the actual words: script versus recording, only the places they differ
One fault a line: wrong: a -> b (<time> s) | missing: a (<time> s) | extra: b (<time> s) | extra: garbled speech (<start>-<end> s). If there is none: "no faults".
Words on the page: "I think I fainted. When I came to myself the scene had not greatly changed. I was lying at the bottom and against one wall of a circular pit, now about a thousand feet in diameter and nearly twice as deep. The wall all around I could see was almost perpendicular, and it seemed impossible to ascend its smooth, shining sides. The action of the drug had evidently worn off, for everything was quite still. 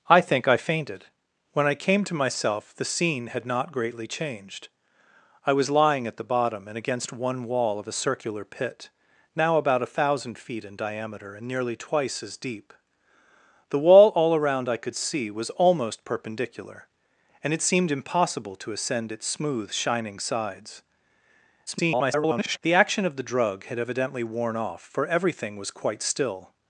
extra: garbled speech (21.7-22.6 s)